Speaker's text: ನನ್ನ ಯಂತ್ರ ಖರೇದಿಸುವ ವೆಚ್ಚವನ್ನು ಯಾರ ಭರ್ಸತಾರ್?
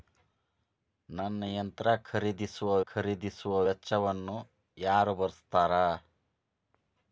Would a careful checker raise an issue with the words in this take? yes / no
yes